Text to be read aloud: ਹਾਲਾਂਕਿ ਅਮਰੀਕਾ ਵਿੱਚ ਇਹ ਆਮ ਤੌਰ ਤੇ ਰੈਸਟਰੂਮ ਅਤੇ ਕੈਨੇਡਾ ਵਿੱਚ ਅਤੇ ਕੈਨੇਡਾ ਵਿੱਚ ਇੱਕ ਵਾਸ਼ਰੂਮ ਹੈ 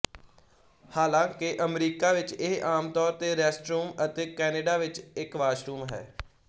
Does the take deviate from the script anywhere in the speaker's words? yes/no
yes